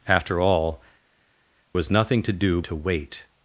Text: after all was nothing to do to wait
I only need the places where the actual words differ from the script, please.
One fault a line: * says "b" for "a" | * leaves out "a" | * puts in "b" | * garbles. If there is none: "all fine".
all fine